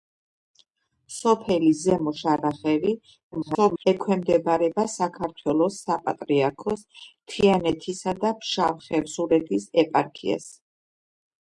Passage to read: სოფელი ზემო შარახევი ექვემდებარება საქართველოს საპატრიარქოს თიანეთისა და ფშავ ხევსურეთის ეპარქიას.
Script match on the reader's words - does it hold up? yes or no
no